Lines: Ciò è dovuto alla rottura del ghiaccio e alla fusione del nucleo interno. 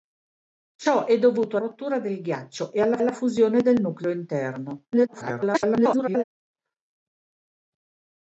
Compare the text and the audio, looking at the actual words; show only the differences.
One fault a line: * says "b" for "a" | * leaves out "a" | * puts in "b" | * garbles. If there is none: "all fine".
* leaves out "alla"
* puts in "alla"
* garbles